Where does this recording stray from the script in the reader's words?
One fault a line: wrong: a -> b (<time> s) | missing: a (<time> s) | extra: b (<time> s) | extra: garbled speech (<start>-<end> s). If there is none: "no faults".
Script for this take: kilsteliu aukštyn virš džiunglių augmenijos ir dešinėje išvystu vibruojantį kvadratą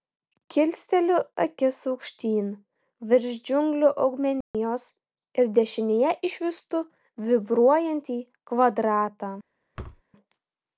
extra: akis (1.4 s)